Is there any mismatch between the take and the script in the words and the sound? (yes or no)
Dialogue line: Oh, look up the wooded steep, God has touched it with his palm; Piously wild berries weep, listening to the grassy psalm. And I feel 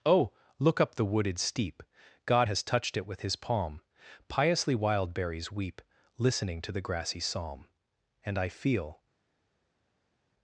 no